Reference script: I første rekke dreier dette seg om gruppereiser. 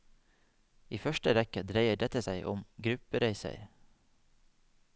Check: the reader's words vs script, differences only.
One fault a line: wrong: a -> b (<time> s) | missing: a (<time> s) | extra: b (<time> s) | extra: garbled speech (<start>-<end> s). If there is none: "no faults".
no faults